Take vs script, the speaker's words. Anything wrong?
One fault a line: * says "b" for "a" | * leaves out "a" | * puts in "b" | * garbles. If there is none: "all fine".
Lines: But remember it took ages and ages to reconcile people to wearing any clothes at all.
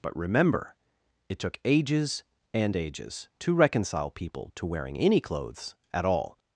all fine